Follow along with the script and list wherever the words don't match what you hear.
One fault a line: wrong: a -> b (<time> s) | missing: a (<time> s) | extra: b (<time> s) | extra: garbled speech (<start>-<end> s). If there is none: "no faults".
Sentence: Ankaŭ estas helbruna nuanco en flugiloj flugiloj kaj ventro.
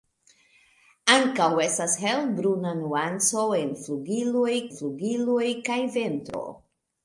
no faults